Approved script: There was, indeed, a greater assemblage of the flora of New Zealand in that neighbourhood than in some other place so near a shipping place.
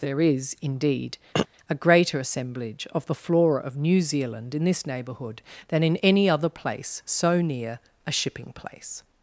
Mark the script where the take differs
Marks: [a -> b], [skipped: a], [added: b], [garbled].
There [was, -> is] indeed, a greater assemblage of the flora of New Zealand in [that -> this] neighbourhood than in [some -> any] other place so near a shipping place.